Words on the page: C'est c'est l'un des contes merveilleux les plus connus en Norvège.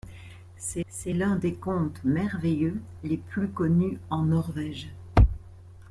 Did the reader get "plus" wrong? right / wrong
right